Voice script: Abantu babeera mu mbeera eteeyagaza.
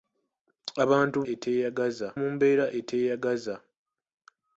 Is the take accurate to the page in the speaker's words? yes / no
no